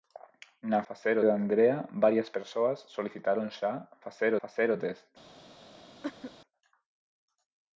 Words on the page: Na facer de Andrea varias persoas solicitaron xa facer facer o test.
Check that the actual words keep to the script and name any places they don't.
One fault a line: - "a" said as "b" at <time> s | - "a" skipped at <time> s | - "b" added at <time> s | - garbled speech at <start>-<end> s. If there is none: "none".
none